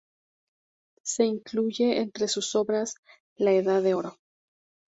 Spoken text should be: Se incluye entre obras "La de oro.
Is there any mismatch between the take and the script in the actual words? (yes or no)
yes